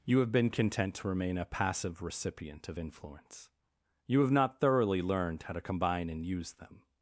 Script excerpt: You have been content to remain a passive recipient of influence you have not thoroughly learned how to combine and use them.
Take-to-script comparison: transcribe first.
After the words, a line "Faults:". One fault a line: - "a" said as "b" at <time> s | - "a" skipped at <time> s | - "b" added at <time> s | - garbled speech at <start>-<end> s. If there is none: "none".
You have been content to remain a passive recipient of influence you have not thoroughly learned how to combine and use them.
Faults:
none